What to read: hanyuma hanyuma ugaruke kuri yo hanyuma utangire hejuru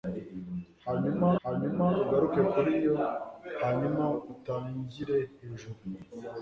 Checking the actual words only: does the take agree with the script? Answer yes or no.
yes